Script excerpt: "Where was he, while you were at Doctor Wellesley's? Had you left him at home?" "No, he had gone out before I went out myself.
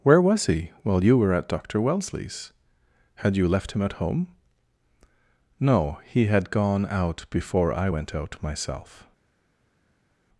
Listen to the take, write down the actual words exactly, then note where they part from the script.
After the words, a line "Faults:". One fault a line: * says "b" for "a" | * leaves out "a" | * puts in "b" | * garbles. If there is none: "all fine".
"Where was he, while you were at Doctor Wellesley's? Had you left him at home?" "No, he had gone out before I went out myself.
Faults:
all fine